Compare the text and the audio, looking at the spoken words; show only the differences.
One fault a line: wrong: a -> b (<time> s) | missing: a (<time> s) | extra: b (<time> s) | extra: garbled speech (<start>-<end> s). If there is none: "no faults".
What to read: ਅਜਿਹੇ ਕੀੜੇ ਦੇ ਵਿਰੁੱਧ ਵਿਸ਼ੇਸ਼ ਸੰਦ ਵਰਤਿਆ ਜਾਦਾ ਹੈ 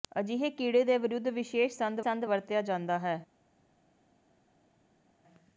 extra: ਸੰਦ (2.0 s)